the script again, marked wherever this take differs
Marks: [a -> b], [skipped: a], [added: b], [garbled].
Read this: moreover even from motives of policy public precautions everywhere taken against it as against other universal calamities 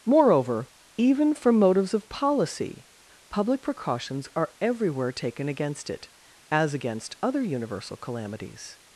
moreover even from motives of policy public precautions [added: are] everywhere taken against it as against other universal calamities